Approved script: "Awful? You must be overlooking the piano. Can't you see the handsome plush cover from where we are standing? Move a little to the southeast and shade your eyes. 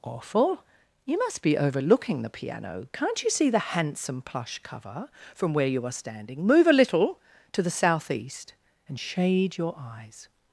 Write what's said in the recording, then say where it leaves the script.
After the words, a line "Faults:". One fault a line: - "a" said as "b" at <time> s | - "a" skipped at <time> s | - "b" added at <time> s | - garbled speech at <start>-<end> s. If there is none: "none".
"Awful? You must be overlooking the piano. Can't you see the handsome plush cover from where you are standing? Move a little to the southeast and shade your eyes.
Faults:
- "we" said as "you" at 5.7 s